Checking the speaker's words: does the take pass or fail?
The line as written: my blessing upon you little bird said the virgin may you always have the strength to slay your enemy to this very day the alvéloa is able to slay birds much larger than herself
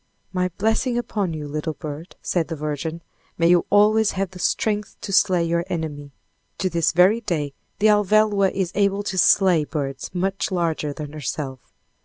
pass